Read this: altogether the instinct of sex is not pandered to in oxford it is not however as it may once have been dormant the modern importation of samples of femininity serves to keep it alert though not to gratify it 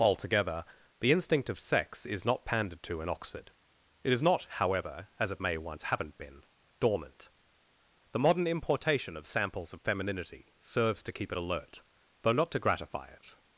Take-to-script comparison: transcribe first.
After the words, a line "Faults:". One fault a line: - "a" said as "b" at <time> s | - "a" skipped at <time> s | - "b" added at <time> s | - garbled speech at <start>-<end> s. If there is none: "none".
altogether the instinct of sex is not pandered to in oxford it is not however as it may once haven't been dormant the modern importation of samples of femininity serves to keep it alert though not to gratify it
Faults:
- "have" said as "haven't" at 5.8 s